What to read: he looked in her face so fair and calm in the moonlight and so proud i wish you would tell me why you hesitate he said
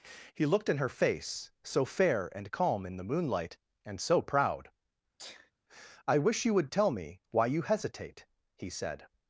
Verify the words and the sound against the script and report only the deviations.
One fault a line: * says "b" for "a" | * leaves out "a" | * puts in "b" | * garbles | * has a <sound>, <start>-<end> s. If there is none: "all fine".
* has a sneeze, 5.2-5.5 s